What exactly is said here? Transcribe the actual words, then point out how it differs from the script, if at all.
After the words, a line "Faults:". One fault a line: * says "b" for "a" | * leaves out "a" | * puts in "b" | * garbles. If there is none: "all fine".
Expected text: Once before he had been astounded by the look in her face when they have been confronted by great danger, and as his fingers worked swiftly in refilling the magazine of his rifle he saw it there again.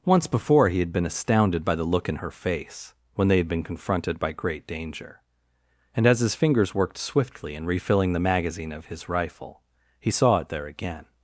Once before he had been astounded by the look in her face when they had been confronted by great danger, and as his fingers worked swiftly in refilling the magazine of his rifle he saw it there again.
Faults:
* says "had" for "have"